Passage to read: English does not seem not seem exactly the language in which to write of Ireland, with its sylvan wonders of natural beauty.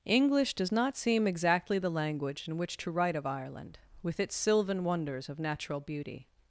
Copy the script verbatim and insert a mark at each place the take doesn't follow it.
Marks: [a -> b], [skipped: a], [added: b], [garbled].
English does not seem [skipped: not seem] exactly the language in which to write of Ireland, with its sylvan wonders of natural beauty.